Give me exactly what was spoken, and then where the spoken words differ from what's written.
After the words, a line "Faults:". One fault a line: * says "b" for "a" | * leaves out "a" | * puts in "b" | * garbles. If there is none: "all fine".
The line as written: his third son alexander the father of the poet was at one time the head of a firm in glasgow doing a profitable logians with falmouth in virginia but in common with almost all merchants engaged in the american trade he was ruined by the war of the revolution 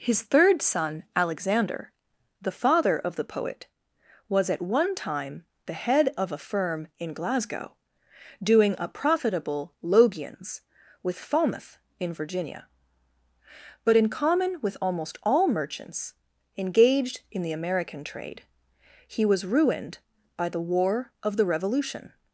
his third son alexander the father of the poet was at one time the head of a firm in glasgow doing a profitable logians with falmouth in virginia but in common with almost all merchants engaged in the american trade he was ruined by the war of the revolution
Faults:
all fine